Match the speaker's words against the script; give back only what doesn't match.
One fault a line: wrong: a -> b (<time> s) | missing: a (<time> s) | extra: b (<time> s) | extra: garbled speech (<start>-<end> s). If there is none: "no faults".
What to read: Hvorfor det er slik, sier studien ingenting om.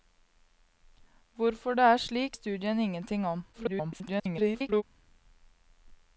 missing: sier (2.4 s)
extra: garbled speech (3.5-4.8 s)